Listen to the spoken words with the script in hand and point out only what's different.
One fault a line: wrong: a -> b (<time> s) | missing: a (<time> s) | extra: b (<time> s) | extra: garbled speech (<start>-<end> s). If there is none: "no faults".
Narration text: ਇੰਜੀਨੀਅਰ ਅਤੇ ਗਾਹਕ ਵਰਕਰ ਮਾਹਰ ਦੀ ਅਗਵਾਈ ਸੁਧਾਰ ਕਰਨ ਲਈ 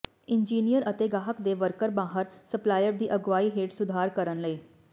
extra: ਦੇ (1.4 s)
extra: ਸਪਲਾਇਰ (2.5 s)
extra: ਹੇਠ (3.6 s)